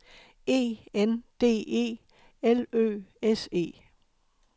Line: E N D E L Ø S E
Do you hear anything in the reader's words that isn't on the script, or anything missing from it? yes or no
no